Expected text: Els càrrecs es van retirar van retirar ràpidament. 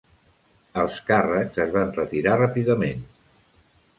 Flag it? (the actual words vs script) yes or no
yes